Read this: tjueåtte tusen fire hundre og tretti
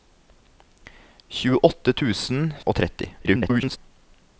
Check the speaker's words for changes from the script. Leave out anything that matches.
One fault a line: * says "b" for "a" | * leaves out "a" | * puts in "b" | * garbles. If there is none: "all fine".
* leaves out "fire hundre"
* garbles